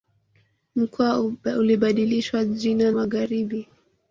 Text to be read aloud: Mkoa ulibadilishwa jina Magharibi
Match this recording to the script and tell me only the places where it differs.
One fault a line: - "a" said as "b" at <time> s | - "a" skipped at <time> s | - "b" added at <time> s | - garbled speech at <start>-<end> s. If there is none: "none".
none